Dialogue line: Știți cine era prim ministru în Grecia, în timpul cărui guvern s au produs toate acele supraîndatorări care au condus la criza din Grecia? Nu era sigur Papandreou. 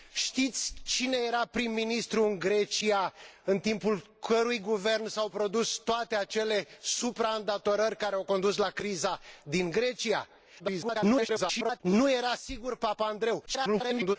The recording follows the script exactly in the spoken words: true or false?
false